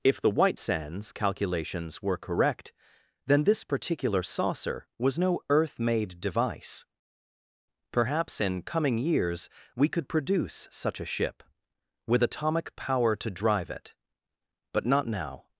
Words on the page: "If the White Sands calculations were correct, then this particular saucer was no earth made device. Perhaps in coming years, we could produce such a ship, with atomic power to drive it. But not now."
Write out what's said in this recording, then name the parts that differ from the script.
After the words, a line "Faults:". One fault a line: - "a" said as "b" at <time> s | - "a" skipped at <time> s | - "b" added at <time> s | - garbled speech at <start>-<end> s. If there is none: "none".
"If the White Sands calculations were correct, then this particular saucer was no earth made device. Perhaps in coming years, we could produce such a ship, with atomic power to drive it. But not now."
Faults:
none